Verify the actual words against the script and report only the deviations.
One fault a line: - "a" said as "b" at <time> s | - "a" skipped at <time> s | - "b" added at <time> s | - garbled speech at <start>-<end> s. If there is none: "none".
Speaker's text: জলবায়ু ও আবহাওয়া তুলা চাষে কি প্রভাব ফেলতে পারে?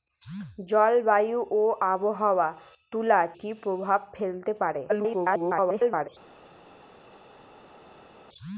- "চাষে" skipped at 3.2 s
- garbled speech at 4.9-6.1 s